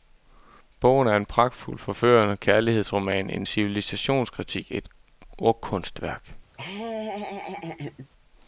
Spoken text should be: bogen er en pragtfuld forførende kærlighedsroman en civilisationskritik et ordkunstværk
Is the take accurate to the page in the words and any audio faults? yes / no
no